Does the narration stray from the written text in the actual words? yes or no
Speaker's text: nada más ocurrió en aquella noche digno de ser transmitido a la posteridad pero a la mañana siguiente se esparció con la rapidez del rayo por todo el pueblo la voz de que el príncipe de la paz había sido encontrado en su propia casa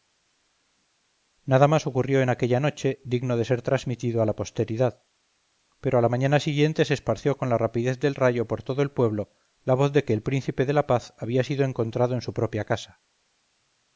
no